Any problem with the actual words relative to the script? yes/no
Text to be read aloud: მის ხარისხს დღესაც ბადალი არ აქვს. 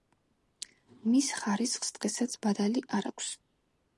no